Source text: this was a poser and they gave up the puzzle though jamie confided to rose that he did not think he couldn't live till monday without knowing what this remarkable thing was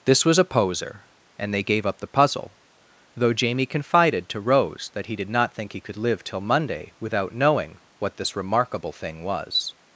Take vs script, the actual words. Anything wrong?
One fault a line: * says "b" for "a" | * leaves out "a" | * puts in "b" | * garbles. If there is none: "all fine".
* says "could" for "couldn't"